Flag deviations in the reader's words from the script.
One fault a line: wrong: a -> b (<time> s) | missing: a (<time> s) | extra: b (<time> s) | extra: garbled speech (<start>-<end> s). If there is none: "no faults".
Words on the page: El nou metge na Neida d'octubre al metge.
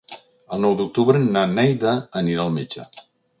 wrong: metge -> d'octubre (0.8 s)
wrong: d'octubre -> anirà (2.2 s)